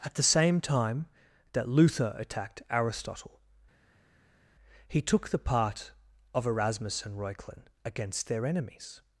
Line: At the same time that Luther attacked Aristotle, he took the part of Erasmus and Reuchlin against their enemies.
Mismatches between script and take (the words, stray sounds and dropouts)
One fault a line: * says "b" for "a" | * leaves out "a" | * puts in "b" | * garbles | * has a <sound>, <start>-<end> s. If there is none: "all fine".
all fine